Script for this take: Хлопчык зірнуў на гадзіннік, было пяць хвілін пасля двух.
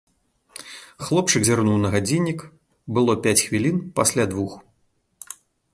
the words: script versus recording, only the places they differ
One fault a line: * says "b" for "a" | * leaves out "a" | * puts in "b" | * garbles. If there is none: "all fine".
all fine